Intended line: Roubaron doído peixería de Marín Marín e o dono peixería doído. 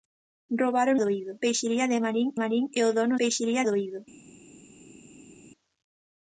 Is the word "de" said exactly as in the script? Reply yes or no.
yes